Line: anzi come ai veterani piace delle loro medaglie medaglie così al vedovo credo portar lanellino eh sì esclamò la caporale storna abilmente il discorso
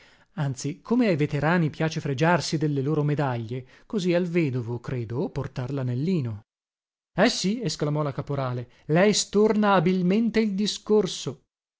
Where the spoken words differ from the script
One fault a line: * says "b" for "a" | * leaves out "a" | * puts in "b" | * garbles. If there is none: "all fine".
* puts in "fregiarsi"
* leaves out "medaglie"
* puts in "lei"